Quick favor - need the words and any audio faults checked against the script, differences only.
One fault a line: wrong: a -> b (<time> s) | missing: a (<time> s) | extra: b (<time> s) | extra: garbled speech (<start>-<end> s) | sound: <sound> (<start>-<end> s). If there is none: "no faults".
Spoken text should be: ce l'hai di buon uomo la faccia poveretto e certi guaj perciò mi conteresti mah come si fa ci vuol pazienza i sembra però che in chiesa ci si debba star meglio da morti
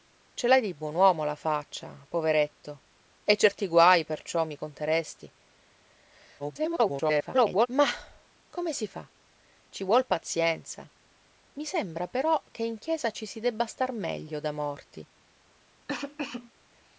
extra: garbled speech (6.4-7.7 s)
sound: cough (15.9-16.5 s)